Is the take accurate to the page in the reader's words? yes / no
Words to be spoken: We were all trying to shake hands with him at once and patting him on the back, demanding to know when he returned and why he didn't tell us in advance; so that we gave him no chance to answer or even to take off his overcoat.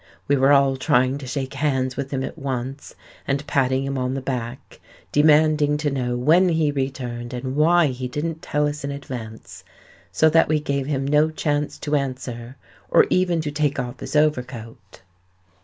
yes